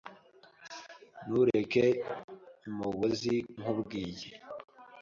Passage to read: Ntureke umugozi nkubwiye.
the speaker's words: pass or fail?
pass